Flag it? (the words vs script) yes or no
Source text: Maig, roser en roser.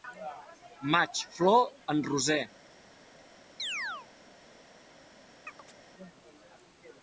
yes